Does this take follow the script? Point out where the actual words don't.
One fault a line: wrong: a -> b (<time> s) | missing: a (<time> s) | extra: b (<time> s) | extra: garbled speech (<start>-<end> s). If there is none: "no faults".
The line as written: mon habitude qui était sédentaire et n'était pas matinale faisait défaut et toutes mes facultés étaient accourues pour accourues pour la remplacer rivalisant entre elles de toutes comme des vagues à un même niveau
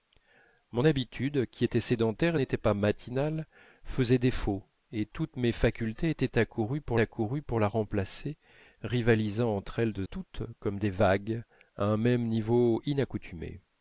no faults